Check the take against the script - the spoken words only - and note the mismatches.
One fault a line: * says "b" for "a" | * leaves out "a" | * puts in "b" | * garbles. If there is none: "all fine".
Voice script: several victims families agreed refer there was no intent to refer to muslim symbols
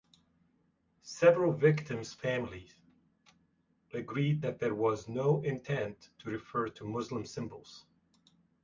* says "that" for "refer"